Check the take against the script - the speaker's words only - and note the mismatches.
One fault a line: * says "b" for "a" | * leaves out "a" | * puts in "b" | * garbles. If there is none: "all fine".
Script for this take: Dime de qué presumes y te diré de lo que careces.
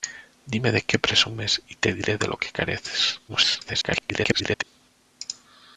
* garbles